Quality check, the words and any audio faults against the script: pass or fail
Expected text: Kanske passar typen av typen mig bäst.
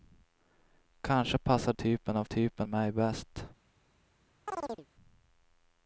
fail